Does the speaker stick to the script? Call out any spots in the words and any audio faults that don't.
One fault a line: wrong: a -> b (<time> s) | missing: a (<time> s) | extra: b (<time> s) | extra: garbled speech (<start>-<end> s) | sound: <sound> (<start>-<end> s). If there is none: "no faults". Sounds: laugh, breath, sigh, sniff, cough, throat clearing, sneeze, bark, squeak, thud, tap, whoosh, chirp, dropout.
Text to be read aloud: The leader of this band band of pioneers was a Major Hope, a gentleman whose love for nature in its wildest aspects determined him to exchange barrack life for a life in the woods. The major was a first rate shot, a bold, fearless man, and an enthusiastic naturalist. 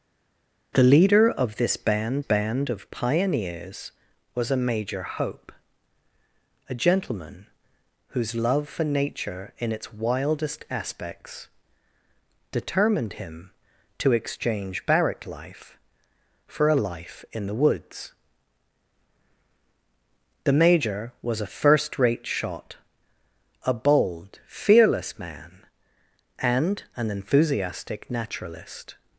no faults